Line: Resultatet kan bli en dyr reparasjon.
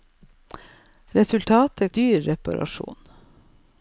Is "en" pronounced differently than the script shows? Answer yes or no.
yes